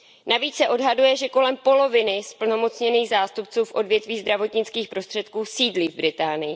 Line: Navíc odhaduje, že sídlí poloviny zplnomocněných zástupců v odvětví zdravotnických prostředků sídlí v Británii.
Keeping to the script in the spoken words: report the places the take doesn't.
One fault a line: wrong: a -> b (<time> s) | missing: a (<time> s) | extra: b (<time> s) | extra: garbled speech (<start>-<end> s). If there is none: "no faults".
extra: se (0.6 s)
wrong: sídlí -> kolem (1.3 s)